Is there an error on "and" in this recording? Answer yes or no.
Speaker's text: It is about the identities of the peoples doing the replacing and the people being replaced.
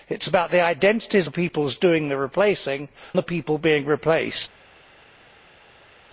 yes